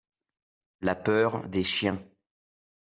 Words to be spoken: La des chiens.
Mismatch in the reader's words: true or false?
true